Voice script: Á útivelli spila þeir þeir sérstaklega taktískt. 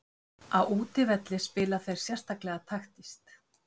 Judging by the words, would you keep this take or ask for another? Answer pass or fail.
fail